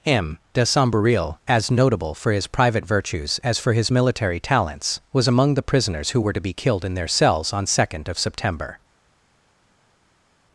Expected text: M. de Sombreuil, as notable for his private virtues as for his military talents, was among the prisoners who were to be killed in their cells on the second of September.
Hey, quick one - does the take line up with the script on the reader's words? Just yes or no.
no